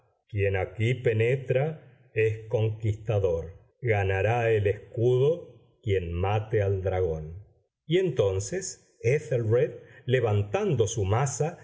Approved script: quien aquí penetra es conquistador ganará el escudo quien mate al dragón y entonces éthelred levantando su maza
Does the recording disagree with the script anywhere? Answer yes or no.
no